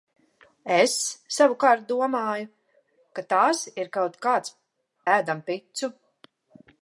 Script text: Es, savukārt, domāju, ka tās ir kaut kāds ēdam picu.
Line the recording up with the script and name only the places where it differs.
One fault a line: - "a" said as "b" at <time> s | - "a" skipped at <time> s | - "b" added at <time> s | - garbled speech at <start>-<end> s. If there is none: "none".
none